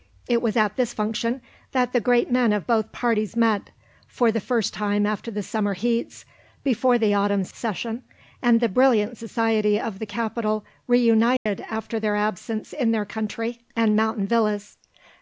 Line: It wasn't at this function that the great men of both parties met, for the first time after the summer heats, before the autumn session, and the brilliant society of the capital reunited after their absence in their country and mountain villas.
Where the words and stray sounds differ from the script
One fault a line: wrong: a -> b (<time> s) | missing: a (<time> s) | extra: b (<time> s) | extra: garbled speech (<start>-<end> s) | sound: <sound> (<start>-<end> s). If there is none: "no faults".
wrong: wasn't -> was (0.4 s)
sound: dropout (11.4-11.5 s)